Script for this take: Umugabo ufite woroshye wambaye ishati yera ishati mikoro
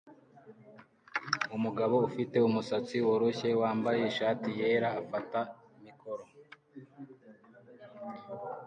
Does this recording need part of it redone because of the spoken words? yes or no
yes